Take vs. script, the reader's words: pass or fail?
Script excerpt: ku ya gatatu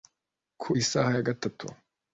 fail